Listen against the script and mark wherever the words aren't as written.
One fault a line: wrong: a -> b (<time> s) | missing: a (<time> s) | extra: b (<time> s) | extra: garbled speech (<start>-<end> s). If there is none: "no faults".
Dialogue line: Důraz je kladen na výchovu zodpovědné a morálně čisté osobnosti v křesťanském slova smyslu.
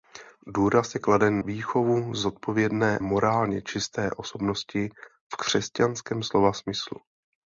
missing: na (1.4 s)
missing: a (3.0 s)